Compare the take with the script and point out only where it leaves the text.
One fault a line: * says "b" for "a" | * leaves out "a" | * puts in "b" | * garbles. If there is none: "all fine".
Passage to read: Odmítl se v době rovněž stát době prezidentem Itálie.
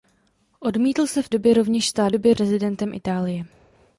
all fine